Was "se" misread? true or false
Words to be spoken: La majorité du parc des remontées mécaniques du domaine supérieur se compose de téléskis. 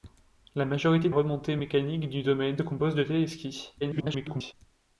true